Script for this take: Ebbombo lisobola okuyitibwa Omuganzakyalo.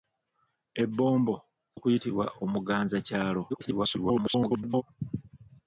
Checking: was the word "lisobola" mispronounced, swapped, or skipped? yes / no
yes